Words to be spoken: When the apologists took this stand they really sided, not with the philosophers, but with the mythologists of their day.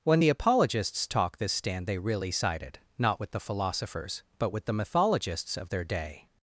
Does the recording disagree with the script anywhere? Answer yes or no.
yes